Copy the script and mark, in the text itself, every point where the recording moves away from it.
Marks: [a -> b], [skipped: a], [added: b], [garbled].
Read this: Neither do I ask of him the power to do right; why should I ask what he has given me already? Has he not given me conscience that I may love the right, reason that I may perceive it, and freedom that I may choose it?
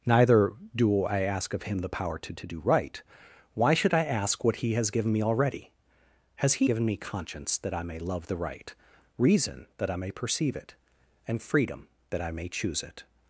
Neither do I ask of him the power to [added: to] do right; why should I ask what he has given me already? Has he [skipped: not] given me conscience that I may love the right, reason that I may perceive it, and freedom that I may choose it?